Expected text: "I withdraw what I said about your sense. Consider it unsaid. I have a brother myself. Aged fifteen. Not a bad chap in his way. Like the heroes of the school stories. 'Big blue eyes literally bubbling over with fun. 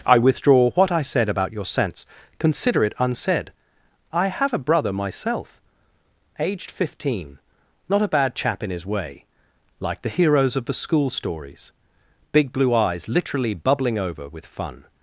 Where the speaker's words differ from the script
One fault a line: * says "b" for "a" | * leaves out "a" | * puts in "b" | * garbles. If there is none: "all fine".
all fine